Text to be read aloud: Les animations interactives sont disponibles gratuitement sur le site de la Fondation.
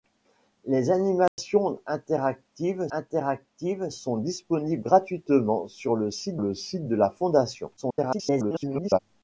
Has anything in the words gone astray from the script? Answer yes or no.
yes